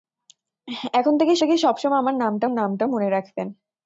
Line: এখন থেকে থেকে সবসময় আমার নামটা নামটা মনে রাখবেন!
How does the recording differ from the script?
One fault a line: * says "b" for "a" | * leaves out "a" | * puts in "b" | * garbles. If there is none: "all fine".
all fine